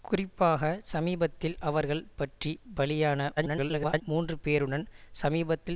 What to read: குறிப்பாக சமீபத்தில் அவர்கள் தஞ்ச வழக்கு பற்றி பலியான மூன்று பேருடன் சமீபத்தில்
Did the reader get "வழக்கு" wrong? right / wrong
wrong